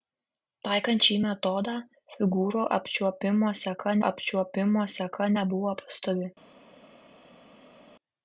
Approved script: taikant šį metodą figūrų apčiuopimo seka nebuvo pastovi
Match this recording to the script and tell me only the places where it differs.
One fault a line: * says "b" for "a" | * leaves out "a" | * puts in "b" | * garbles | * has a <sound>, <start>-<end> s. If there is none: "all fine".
* puts in "apčiuopimo seka"